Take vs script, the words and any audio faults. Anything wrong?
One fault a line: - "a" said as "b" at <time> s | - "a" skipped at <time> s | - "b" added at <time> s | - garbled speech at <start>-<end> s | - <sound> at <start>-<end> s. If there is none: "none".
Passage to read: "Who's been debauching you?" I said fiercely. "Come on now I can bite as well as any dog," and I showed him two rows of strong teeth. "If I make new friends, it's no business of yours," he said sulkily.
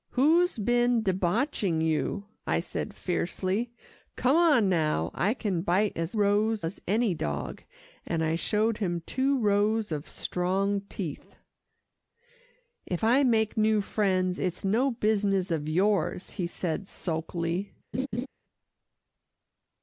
- "well" said as "rows" at 6.1 s
- laugh at 17.9-18.3 s